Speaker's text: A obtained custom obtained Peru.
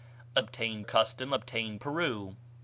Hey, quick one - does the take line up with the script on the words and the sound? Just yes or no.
yes